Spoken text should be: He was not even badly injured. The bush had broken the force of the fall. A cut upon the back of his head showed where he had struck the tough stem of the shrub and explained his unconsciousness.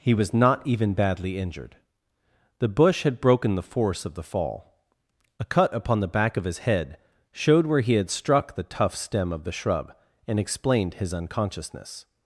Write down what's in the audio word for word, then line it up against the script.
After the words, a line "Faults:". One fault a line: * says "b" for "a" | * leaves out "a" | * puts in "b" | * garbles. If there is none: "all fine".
He was not even badly injured. The bush had broken the force of the fall. A cut upon the back of his head showed where he had struck the tough stem of the shrub and explained his unconsciousness.
Faults:
all fine